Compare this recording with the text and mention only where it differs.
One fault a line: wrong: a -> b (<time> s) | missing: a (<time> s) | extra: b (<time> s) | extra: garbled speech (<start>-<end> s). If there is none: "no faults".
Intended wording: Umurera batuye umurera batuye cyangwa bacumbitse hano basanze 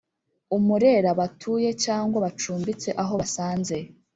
missing: umurera batuye (1.7 s)
wrong: hano -> aho (3.0 s)